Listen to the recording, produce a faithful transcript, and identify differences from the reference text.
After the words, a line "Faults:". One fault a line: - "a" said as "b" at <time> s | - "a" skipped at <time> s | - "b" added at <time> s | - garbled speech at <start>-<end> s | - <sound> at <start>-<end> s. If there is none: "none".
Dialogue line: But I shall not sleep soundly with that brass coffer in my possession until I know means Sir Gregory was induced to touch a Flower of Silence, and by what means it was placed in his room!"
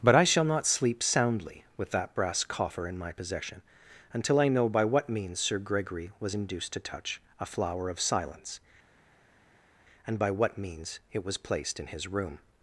But I shall not sleep soundly with that brass coffer in my possession until I know by what means Sir Gregory was induced to touch a Flower of Silence, and by what means it was placed in his room!"
Faults:
- "by what" added at 4.7 s